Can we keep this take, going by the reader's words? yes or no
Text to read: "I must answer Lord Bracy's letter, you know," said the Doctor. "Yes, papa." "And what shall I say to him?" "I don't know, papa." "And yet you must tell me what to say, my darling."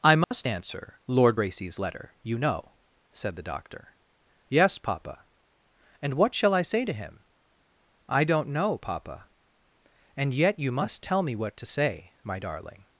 yes